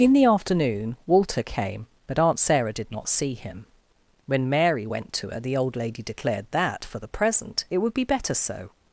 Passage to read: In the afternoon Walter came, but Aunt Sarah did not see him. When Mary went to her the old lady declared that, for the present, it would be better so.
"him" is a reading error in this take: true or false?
false